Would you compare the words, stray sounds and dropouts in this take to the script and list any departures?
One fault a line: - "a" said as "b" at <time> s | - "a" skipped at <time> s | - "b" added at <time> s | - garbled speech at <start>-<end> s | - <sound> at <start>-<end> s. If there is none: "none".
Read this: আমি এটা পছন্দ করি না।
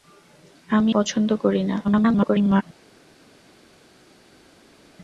- "এটা" skipped at 0.9 s
- garbled speech at 1.8-2.6 s